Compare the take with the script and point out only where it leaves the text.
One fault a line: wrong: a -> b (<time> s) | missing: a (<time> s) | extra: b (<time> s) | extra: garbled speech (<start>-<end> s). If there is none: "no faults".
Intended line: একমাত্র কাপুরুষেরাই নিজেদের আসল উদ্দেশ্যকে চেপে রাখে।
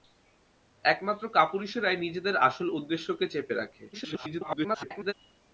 extra: garbled speech (3.9-5.1 s)